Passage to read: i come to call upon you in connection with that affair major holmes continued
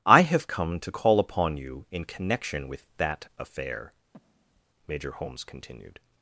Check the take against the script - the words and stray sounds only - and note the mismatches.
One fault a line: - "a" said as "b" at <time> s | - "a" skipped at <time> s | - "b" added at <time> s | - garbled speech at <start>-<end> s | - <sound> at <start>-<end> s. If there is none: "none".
- "have" added at 0.2 s
- breath at 4.1-4.6 s